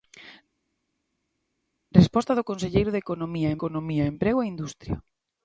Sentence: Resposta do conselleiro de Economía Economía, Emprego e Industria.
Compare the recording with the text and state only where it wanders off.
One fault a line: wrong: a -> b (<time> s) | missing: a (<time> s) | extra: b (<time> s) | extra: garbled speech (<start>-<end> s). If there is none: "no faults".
no faults